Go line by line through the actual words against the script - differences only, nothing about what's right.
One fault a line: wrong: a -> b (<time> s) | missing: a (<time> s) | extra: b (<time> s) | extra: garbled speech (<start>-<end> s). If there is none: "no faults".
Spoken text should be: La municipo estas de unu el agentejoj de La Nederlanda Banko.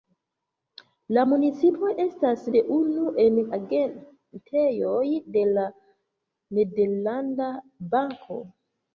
no faults